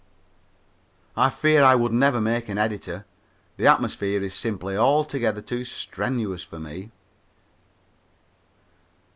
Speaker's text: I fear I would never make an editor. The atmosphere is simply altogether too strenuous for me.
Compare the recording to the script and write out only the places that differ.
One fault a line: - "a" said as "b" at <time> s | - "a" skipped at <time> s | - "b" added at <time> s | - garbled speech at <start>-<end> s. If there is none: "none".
none